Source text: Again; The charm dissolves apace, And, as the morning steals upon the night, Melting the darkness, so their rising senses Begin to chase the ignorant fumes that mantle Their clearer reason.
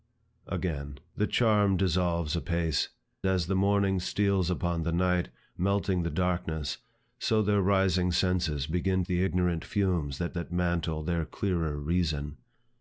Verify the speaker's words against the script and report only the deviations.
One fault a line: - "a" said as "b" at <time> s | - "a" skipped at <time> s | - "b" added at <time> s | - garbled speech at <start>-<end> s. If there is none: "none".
- "And" skipped at 2.9 s
- "to chase" skipped at 9.0 s
- "that" added at 10.3 s